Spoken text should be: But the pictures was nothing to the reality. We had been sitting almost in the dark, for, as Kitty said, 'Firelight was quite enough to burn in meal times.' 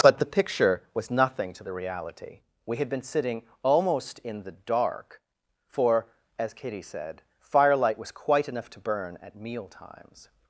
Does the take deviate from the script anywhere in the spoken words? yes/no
yes